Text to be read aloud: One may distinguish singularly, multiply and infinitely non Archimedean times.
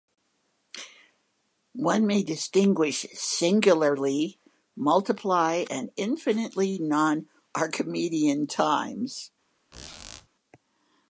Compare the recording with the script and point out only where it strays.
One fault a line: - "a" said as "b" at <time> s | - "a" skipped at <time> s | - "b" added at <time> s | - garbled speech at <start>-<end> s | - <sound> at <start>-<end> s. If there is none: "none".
- squeak at 9.7-10.3 s